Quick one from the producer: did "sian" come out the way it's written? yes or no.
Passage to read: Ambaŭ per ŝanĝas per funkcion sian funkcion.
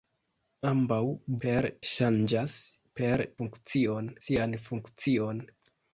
yes